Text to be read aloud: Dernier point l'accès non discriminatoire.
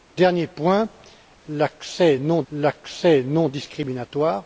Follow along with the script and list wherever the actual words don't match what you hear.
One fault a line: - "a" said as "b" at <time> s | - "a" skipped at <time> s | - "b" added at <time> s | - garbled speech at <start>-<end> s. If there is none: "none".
- "l'accès non" added at 2.5 s